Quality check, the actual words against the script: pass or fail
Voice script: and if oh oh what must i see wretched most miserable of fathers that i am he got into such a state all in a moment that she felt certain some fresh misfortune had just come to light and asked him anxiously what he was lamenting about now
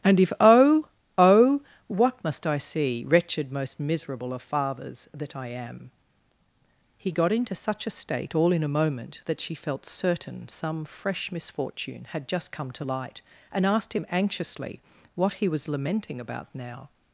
pass